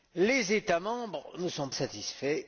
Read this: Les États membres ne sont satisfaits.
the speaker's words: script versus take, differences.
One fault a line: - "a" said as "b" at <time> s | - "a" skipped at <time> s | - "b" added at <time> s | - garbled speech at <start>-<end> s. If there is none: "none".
none